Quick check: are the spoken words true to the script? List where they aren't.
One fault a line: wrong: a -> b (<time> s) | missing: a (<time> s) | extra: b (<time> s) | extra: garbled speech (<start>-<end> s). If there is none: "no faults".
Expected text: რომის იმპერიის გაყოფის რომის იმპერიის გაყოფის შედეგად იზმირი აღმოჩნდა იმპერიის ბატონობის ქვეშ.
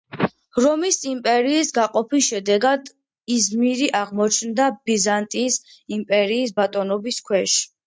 missing: რომის იმპერიის გაყოფის (2.3 s)
extra: ბიზანტიის (4.9 s)